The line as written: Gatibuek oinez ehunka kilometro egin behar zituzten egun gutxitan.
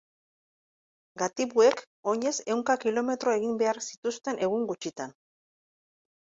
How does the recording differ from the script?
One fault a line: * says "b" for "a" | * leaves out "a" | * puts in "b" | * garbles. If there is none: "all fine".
all fine